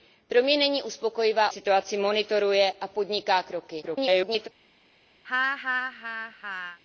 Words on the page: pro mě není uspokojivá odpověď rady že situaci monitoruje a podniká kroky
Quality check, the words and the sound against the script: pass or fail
fail